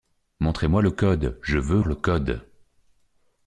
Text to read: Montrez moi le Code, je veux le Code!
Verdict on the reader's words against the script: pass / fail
pass